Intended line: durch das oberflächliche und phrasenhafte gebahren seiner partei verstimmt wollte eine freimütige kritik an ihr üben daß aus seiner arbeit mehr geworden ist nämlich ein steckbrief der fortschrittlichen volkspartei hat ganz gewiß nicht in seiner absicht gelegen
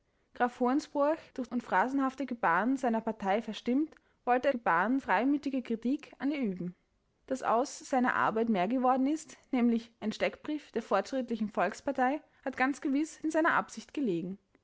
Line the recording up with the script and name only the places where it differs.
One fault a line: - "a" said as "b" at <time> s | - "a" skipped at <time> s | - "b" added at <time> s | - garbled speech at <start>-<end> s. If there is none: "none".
- "das oberflächliche" skipped at 1.5 s
- "eine" said as "gebahren" at 4.5 s
- "nicht" skipped at 13.2 s